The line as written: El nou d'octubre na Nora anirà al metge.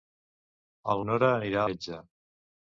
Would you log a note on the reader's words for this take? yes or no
yes